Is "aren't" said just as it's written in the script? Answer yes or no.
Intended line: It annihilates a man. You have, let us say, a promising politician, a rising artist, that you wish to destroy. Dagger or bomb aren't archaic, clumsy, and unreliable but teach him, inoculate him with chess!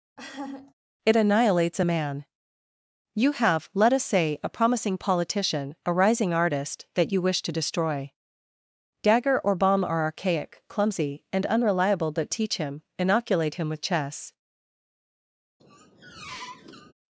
no